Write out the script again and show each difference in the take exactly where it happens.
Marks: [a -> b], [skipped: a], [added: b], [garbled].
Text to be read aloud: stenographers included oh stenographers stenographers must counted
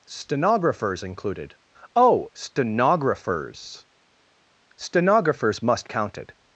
stenographers included oh stenographers stenographers must counted